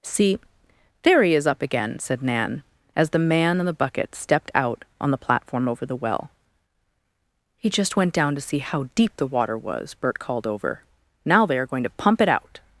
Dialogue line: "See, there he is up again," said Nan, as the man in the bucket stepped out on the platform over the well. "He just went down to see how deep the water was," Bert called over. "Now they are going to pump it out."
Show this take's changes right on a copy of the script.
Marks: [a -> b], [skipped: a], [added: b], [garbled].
"See, there he is up again," said Nan, as the man in the bucket stepped out on the platform over the well. "He just went down to see how deep the water was," Bert called over. "Now they are going to pump it out."